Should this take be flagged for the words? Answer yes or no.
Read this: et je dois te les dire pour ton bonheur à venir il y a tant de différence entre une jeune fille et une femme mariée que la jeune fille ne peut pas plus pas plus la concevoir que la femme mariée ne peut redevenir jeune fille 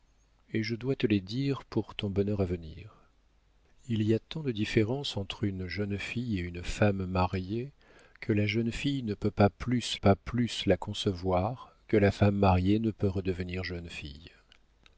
no